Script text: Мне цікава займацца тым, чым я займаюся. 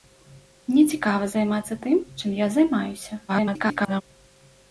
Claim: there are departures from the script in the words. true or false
true